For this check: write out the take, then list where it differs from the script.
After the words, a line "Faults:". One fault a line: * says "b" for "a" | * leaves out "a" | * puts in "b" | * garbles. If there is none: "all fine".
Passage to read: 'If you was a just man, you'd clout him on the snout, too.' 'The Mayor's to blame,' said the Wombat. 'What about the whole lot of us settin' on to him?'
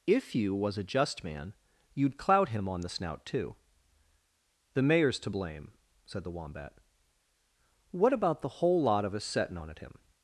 'If you was a just man, you'd clout him on the snout, too.' 'The Mayor's to blame,' said the Wombat. 'What about the whole lot of us settin' on at him?'
Faults:
* says "at" for "to"